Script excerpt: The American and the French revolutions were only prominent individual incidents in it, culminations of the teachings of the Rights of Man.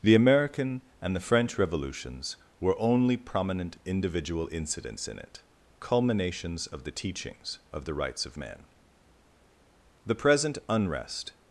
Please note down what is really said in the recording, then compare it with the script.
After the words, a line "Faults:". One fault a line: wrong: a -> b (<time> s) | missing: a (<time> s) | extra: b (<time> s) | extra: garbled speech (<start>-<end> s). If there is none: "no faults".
The American and the French revolutions were only prominent individual incidents in it, culminations of the teachings of the Rights of Man. The present unrest
Faults:
extra: The present unrest (10.0 s)